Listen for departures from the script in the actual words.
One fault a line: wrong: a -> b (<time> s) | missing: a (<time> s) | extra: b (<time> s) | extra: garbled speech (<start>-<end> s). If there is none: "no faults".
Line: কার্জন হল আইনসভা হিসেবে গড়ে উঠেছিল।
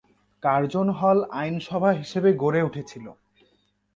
no faults